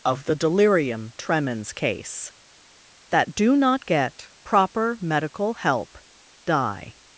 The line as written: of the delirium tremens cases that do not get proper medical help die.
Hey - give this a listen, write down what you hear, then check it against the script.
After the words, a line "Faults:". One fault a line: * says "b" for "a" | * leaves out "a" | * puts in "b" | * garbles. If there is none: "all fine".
of the delirium tremens case that do not get proper medical help die.
Faults:
* says "case" for "cases"